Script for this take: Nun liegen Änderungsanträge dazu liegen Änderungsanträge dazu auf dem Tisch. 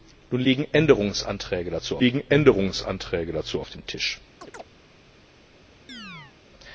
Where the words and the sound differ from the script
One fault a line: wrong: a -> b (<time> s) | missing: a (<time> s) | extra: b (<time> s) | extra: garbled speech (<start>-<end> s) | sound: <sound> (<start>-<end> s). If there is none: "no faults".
sound: chirp (4.4-4.6 s)
sound: chirp (5.9-6.4 s)